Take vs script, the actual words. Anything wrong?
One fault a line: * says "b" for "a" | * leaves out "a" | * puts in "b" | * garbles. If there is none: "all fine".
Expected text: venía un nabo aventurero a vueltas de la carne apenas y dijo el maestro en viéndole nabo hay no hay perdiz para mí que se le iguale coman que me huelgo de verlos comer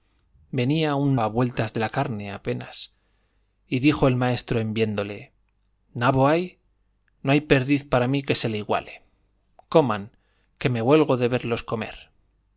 * leaves out "nabo aventurero"